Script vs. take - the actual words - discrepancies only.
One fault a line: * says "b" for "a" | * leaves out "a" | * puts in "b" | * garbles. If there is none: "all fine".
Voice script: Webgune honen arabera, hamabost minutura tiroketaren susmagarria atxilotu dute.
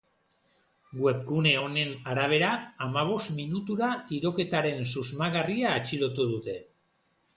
all fine